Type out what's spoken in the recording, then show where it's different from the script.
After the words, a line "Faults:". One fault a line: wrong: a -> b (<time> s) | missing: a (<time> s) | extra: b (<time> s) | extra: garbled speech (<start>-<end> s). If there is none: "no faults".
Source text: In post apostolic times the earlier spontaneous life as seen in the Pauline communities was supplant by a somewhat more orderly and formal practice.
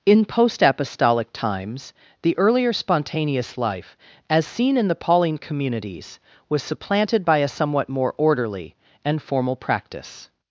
In post apostolic times the earlier spontaneous life as seen in the Pauline communities was supplanted by a somewhat more orderly and formal practice.
Faults:
wrong: supplant -> supplanted (6.6 s)